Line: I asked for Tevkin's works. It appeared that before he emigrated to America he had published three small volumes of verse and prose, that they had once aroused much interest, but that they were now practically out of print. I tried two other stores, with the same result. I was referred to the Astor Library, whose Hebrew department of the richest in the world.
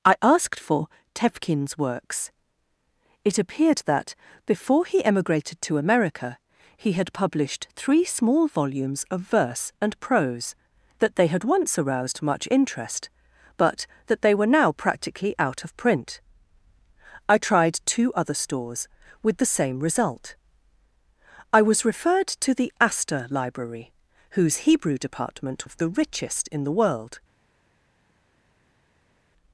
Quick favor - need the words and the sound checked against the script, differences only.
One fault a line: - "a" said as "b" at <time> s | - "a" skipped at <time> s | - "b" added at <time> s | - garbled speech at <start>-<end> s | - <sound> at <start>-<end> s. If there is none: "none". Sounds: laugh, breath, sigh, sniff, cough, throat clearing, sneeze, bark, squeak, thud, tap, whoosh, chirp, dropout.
none